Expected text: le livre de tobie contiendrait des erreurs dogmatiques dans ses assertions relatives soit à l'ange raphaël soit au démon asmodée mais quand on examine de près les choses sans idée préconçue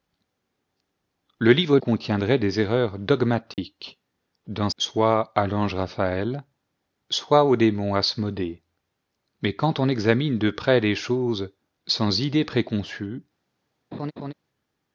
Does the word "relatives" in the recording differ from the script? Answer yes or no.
yes